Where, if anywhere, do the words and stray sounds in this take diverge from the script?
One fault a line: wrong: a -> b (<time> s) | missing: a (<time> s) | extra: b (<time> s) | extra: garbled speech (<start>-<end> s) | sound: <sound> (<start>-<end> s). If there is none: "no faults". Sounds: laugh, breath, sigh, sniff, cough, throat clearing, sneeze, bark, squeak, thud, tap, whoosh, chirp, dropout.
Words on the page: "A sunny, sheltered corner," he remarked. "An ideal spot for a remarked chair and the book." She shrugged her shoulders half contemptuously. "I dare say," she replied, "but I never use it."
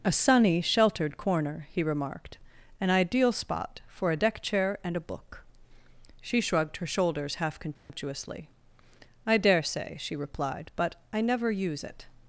wrong: remarked -> deck (4.2 s)
wrong: the -> a (5.0 s)
sound: dropout (7.8-7.9 s)